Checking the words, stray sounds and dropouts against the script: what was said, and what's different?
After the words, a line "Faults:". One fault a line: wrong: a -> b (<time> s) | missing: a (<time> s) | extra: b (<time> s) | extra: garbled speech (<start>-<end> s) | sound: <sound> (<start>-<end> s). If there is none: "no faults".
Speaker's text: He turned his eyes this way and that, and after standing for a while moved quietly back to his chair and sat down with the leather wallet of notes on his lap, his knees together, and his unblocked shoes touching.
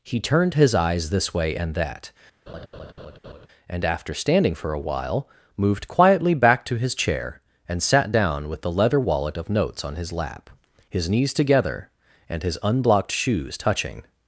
He turned his eyes this way and that, and after standing for a while moved quietly back to his chair and sat down with the leather wallet of notes on his lap, his knees together, and his unblocked shoes touching.
Faults:
sound: laugh (2.5-3.5 s)